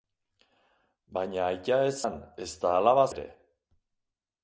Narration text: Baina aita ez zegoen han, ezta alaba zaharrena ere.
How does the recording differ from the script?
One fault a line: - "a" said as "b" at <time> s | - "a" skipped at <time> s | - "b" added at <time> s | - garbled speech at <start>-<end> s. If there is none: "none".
- "zegoen" skipped at 1.9 s
- "zaharrena" skipped at 3.1 s